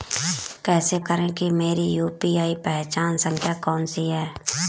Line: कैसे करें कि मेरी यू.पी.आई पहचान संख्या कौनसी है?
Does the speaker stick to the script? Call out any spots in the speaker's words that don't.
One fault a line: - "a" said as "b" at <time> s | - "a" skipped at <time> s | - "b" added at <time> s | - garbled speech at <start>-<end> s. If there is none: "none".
none